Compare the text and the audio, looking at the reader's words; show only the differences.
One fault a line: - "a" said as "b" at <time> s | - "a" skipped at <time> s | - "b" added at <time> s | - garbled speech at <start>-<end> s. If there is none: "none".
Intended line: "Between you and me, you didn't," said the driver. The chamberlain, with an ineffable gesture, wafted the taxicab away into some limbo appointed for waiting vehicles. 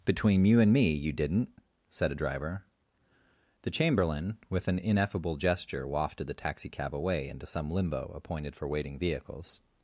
- "the" said as "a" at 2.1 s